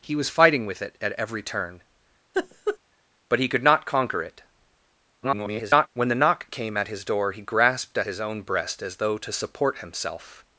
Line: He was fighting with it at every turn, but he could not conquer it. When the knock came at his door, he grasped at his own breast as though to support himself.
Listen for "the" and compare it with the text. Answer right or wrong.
right